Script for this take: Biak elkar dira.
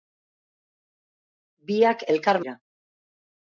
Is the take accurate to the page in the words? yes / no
yes